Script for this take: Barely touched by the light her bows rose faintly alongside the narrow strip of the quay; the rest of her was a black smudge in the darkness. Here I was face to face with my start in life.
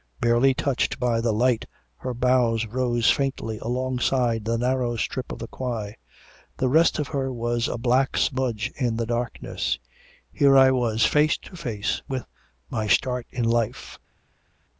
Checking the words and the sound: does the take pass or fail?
pass